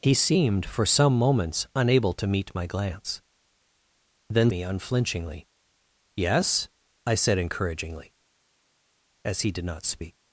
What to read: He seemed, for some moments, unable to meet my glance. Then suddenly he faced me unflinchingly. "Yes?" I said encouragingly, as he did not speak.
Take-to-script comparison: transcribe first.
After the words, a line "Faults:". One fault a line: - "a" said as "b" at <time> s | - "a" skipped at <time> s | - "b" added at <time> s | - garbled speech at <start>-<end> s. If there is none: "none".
He seemed, for some moments, unable to meet my glance. Then me unflinchingly. "Yes?" I said encouragingly, as he did not speak.
Faults:
- "suddenly he faced" skipped at 4.5 s